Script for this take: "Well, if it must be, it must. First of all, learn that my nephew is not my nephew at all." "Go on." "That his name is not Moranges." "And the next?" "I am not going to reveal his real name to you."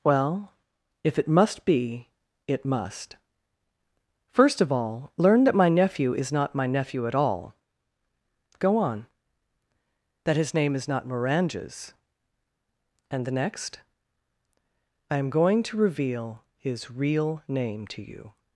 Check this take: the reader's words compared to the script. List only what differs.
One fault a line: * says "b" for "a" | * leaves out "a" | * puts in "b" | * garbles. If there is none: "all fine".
* leaves out "not"